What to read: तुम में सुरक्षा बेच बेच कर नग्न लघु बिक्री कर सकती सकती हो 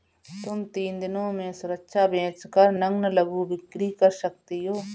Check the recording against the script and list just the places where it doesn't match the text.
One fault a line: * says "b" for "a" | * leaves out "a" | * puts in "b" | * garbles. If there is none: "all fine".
* puts in "तीन दिनों"
* leaves out "बेच"
* leaves out "सकती"